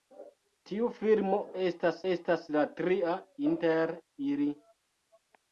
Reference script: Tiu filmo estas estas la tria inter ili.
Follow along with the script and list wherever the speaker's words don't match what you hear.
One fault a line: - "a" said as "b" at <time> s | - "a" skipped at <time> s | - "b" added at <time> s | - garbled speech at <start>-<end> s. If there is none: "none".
none